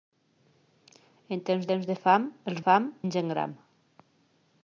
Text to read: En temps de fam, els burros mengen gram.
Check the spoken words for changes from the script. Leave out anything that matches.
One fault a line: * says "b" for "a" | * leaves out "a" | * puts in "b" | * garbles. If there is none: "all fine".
* puts in "temps"
* says "fam" for "burros"